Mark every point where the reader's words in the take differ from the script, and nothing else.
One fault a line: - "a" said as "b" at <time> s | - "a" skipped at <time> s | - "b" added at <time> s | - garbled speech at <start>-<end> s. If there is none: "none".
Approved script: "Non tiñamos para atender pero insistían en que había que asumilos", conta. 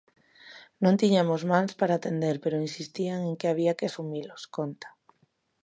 - "mans" added at 1.5 s